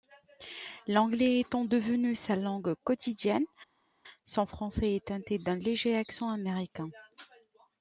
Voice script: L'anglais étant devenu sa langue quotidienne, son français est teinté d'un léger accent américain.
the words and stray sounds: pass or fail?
pass